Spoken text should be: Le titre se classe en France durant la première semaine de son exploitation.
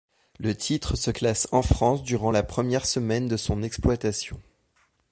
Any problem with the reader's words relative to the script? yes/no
no